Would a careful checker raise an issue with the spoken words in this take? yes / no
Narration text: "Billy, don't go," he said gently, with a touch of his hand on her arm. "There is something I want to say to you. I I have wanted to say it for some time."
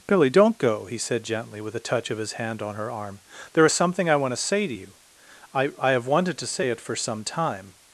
no